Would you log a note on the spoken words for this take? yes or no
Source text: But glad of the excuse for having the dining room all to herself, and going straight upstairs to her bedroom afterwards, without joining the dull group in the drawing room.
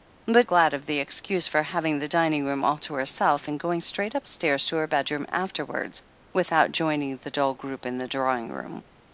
no